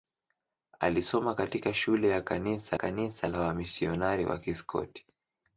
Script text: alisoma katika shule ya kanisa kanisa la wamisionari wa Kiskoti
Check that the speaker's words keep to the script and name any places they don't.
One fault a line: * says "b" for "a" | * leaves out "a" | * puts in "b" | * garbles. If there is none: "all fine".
all fine